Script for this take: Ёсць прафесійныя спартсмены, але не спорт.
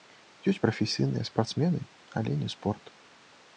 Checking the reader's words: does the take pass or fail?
pass